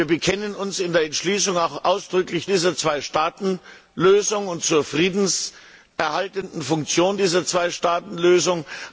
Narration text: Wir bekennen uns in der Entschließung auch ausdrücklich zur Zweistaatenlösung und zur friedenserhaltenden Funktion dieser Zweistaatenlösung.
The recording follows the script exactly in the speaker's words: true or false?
false